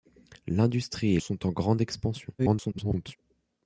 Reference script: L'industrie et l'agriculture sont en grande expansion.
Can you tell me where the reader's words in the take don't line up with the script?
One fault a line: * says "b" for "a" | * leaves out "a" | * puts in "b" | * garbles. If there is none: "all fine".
* leaves out "l'agriculture"
* garbles